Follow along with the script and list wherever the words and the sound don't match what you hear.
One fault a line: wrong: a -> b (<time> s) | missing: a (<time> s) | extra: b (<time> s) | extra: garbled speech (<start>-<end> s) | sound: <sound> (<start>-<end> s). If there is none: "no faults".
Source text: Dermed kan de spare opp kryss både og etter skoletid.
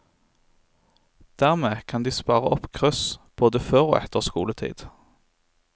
extra: før (3.6 s)